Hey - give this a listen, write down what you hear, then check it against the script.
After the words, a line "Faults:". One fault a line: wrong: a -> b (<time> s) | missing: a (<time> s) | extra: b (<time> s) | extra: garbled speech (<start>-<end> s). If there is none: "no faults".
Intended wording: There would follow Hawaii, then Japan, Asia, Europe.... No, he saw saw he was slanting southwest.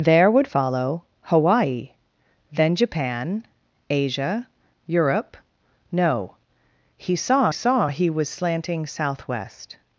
There would follow Hawaii, then Japan, Asia, Europe.... No, he saw saw he was slanting southwest.
Faults:
no faults